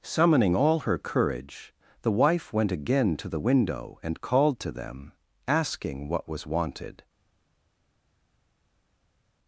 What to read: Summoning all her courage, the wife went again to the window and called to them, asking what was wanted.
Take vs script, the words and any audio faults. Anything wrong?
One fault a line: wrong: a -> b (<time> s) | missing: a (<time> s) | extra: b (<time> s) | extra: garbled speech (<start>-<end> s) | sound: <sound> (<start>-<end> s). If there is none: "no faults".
no faults